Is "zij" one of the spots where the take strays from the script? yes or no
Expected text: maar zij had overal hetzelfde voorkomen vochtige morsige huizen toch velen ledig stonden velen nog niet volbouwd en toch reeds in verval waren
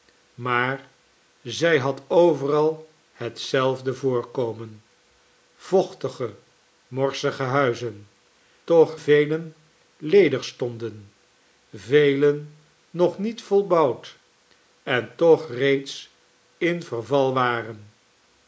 no